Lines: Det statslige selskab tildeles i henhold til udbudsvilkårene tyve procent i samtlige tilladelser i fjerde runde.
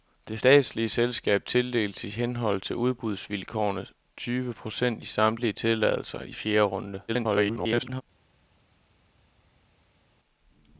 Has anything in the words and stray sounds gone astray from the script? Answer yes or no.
yes